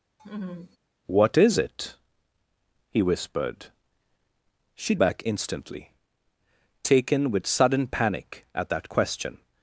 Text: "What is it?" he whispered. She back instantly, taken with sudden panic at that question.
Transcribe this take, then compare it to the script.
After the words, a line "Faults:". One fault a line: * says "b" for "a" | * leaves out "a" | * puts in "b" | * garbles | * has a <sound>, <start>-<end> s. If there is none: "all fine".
"What is it?" he whispered. She back instantly, taken with sudden panic at that question.
Faults:
* has a laugh, 0.2-0.8 s